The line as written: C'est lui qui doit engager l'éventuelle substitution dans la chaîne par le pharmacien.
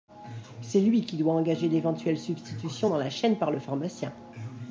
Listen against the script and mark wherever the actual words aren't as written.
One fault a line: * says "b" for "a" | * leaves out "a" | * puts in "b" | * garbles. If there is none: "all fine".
all fine